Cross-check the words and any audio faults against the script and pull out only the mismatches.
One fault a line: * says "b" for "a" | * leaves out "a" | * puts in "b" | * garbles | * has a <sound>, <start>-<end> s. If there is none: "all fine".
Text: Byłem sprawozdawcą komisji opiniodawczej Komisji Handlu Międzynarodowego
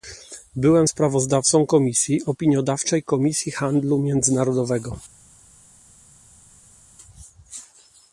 all fine